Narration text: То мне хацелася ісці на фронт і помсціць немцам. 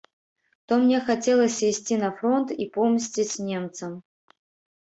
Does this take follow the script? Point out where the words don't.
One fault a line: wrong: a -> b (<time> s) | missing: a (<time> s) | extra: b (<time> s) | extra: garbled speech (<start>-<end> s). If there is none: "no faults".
no faults